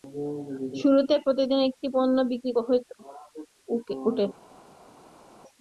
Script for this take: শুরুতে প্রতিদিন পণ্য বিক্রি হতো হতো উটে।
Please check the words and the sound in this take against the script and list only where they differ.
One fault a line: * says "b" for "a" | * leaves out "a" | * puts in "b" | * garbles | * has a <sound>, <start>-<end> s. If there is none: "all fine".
* puts in "একটি"
* leaves out "হতো"